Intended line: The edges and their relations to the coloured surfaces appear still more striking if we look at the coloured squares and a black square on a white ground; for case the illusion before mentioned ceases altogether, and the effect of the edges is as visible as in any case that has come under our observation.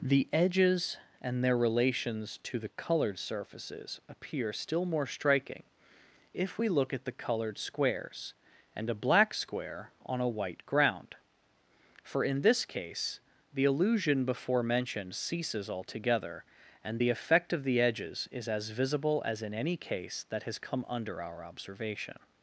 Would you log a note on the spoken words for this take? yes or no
yes